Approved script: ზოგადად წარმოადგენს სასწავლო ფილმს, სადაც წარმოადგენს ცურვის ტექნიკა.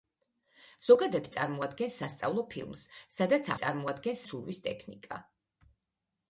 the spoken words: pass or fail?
pass